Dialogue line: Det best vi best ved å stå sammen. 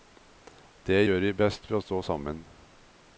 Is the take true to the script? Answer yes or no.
no